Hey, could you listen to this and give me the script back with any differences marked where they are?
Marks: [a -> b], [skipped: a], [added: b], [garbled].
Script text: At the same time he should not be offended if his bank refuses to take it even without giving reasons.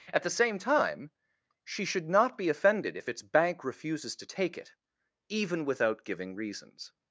At the same time [he -> she] should not be offended if [his -> its] bank refuses to take it even without giving reasons.